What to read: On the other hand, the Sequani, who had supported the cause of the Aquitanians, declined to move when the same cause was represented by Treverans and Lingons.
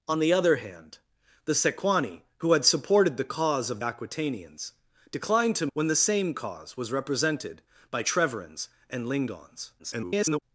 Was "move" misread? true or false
true